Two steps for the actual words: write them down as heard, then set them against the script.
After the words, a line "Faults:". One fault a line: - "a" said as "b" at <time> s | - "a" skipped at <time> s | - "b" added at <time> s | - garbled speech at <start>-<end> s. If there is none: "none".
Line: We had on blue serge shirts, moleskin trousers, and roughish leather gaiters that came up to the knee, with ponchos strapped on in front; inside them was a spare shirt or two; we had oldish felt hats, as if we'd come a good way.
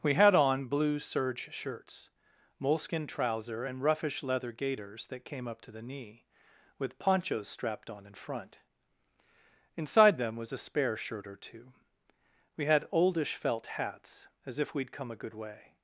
We had on blue serge shirts, moleskin trouser, and roughish leather gaiters that came up to the knee, with ponchos strapped on in front; inside them was a spare shirt or two; we had oldish felt hats, as if we'd come a good way.
Faults:
- "trousers" said as "trouser" at 3.0 s